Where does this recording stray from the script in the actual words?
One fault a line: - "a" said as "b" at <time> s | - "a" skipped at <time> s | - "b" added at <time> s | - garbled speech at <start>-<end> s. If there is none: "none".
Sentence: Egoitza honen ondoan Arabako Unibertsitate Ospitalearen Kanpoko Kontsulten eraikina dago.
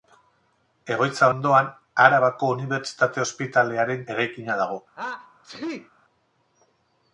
- "honen" skipped at 1.3 s
- "Kanpoko Kontsulten" skipped at 4.0 s